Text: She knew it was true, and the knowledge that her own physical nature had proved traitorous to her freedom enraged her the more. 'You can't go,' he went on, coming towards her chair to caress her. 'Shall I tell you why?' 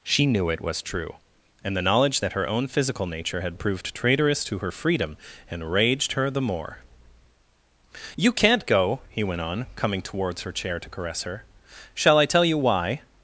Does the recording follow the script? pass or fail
pass